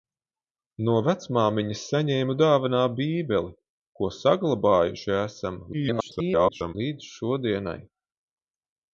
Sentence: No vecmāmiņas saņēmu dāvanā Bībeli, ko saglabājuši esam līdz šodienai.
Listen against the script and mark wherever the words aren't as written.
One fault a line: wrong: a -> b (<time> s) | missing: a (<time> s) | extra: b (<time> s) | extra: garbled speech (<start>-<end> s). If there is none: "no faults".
extra: garbled speech (5.7-6.8 s)